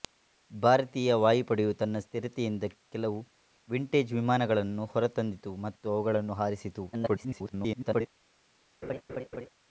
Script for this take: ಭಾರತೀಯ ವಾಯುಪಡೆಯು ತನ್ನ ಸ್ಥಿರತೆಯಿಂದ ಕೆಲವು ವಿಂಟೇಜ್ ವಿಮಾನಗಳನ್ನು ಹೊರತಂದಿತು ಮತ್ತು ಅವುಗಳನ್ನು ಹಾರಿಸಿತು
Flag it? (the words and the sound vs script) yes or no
yes